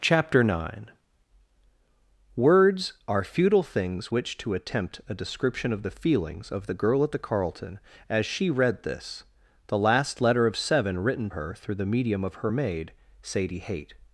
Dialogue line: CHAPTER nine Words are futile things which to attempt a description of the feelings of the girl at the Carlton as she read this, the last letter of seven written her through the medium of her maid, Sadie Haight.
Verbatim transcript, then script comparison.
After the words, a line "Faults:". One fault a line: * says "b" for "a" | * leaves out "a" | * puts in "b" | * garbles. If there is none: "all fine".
CHAPTER nine Words are futile things which to attempt a description of the feelings of the girl at the Carlton as she read this, the last letter of seven written her through the medium of her maid, Sadie Haight.
Faults:
all fine